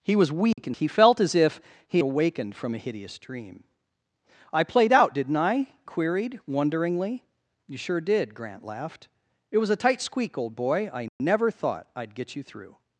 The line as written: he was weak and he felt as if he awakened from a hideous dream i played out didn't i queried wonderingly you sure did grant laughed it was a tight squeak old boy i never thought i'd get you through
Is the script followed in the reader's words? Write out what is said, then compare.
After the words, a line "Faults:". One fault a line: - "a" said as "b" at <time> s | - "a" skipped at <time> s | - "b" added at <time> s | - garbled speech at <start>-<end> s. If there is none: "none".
he was weak and he felt as if he awakened from a hideous dream i played out didn't i queried wonderingly you sure did grant laughed it was a tight squeak old boy i never thought i'd get you through
Faults:
none